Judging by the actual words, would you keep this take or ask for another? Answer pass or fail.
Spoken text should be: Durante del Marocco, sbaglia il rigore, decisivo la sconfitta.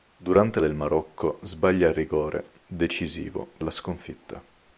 pass